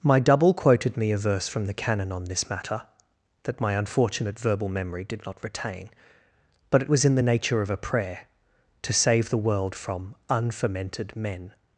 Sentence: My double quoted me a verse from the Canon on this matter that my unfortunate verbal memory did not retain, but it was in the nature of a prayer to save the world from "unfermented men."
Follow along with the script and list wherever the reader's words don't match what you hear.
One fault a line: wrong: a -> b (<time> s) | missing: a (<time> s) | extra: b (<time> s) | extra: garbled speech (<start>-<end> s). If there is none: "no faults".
no faults